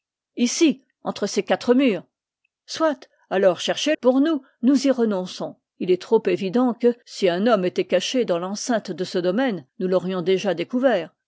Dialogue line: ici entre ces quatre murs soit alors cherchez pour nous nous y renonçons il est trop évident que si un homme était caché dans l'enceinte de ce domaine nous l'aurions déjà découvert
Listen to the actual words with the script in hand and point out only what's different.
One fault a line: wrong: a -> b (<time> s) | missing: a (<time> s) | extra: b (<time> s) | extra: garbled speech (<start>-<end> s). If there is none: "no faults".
no faults